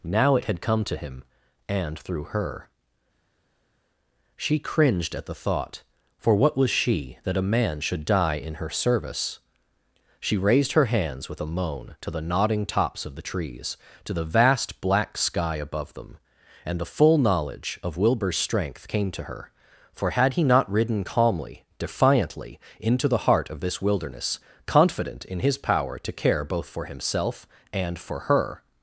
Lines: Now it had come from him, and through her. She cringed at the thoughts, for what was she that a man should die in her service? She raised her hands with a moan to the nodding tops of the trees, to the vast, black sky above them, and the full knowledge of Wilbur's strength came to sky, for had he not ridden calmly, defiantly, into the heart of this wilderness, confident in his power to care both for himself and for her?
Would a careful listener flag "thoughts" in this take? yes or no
yes